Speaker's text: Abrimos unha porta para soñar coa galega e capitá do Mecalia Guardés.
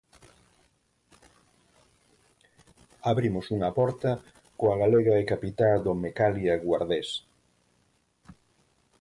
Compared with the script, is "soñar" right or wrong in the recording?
wrong